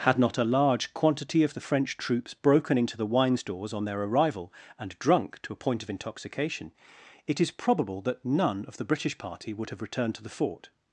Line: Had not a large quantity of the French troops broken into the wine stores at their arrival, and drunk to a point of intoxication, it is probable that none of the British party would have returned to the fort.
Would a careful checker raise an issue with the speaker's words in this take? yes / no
yes